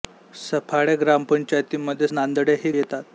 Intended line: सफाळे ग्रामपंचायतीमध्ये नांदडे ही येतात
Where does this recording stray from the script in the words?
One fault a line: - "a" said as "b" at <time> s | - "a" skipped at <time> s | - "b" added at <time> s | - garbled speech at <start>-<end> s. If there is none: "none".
none